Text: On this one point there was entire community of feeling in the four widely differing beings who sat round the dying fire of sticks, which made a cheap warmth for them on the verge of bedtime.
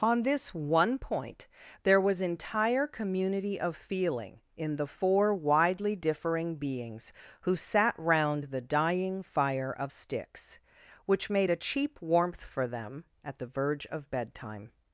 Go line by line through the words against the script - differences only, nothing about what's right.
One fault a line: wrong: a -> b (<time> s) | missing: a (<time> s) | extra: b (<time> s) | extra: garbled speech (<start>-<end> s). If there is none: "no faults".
wrong: on -> at (13.2 s)